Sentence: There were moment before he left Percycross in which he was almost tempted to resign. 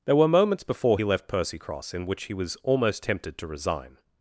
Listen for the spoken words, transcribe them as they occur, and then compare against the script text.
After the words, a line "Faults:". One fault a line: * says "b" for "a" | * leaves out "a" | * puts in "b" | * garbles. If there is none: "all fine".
There were moments before he left Percycross in which he was almost tempted to resign.
Faults:
* says "moments" for "moment"